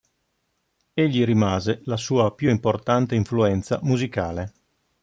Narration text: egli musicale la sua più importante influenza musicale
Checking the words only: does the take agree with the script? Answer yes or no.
no